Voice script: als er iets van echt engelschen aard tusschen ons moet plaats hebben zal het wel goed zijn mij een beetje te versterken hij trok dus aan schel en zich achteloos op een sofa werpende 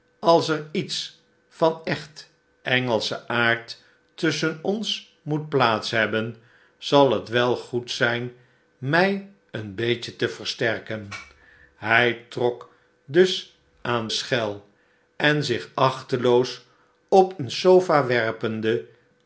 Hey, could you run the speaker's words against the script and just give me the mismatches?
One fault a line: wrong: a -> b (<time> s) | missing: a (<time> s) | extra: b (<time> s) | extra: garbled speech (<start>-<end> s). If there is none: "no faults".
no faults